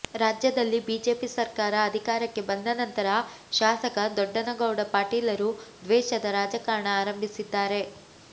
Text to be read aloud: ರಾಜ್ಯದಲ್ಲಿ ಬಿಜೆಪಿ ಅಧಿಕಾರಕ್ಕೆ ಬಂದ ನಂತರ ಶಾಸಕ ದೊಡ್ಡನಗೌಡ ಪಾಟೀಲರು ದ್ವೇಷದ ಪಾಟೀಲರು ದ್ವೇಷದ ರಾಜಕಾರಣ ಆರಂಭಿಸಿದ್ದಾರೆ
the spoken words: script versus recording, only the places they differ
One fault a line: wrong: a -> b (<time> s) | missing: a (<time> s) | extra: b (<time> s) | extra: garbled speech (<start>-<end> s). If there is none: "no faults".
extra: ಸರ್ಕಾರ (1.3 s)
missing: ಪಾಟೀಲರು ದ್ವೇಷದ (6.3 s)